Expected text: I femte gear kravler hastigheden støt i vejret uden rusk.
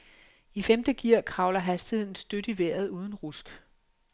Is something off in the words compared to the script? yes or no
no